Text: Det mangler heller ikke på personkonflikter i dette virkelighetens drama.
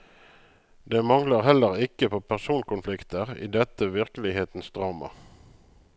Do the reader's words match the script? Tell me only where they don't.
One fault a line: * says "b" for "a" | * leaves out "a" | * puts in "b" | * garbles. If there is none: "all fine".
all fine